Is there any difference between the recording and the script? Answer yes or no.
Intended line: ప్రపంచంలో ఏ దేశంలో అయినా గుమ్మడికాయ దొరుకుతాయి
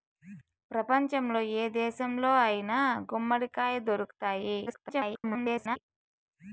yes